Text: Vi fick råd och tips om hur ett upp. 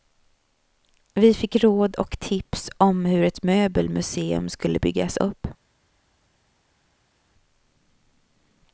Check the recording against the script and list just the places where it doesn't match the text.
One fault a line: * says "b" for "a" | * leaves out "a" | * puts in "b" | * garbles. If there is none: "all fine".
* puts in "möbelmuseum skulle byggas"